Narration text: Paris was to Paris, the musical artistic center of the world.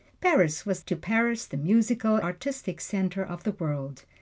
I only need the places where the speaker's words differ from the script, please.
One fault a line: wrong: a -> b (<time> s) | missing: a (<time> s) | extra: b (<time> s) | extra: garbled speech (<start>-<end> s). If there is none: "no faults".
no faults